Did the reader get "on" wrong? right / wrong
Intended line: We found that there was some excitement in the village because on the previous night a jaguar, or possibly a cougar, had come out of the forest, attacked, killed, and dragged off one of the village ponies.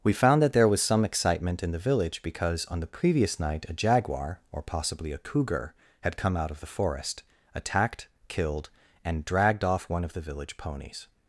right